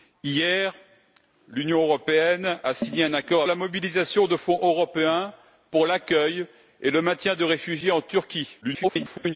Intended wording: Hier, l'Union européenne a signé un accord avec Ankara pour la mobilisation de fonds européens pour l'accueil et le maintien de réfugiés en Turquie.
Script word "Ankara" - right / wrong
wrong